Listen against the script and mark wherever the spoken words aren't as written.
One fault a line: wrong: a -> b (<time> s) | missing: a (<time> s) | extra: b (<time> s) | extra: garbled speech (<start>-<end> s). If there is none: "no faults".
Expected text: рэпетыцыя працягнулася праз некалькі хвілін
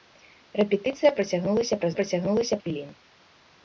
wrong: некалькі -> працягнулася (2.0 s)